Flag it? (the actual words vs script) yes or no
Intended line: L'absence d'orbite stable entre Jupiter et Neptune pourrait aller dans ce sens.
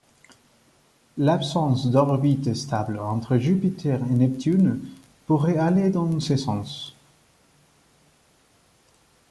no